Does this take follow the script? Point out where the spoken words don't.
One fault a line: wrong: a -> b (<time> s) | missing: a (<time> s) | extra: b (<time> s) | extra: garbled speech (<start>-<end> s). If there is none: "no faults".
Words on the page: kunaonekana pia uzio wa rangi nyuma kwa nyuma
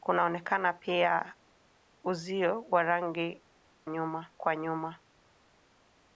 no faults